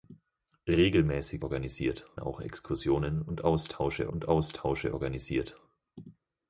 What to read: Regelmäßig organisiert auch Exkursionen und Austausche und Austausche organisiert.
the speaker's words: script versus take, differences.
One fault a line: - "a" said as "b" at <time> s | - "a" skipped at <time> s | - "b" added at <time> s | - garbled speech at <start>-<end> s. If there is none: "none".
none